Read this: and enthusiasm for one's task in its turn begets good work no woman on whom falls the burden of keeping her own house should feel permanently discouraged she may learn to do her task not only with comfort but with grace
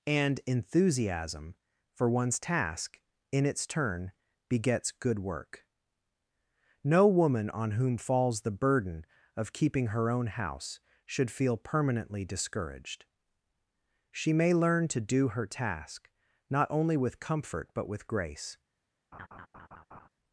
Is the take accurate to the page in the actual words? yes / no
yes